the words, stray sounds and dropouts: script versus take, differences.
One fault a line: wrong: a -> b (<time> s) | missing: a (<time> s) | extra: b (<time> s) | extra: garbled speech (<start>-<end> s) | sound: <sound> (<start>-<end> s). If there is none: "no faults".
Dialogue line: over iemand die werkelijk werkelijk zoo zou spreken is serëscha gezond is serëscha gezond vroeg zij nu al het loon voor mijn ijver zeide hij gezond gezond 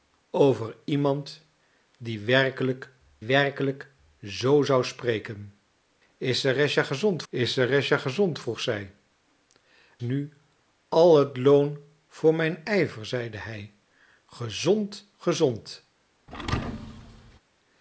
sound: thud (16.3-17.4 s)